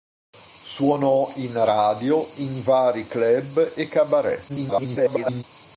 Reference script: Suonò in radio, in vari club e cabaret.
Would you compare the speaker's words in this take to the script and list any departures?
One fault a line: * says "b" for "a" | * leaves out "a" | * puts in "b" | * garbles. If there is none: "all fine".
* garbles